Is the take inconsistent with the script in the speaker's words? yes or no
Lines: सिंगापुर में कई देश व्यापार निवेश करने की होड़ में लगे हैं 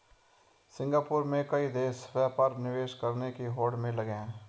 no